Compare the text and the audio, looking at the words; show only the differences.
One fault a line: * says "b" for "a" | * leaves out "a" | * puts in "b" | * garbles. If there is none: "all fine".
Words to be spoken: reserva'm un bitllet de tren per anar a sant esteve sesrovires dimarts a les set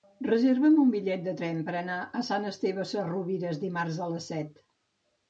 all fine